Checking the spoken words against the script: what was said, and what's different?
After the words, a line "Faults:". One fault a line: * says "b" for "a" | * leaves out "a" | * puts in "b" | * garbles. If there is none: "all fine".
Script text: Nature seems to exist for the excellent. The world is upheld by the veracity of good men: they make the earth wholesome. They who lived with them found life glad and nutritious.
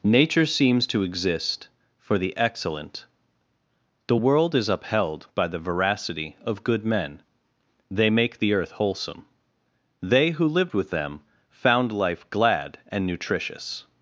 Nature seems to exist for the excellent. The world is upheld by the veracity of good men: they make the earth wholesome. They who lived with them found life glad and nutritious.
Faults:
all fine